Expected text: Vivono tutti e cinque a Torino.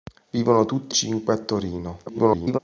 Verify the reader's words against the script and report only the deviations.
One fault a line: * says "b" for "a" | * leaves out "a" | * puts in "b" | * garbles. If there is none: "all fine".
* leaves out "e"
* garbles